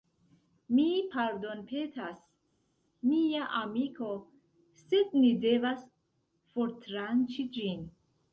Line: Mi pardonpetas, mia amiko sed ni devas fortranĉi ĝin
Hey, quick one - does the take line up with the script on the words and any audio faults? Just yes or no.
yes